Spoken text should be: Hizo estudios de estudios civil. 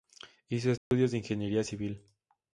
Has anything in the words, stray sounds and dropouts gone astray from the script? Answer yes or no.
yes